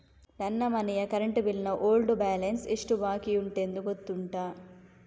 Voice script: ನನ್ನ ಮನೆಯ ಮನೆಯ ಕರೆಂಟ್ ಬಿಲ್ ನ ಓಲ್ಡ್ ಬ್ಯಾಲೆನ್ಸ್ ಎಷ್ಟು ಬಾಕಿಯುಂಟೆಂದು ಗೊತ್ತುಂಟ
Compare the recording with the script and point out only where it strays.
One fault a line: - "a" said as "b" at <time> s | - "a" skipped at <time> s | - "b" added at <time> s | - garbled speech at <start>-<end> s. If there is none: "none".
- "ಮನೆಯ" skipped at 1.1 s